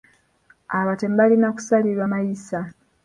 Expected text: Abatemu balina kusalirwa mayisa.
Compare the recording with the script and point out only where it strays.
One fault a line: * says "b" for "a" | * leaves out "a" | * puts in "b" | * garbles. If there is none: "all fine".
all fine